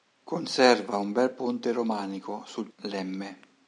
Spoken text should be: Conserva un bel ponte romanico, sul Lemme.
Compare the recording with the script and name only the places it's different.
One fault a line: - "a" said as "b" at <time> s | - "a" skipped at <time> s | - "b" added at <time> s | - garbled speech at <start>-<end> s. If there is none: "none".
none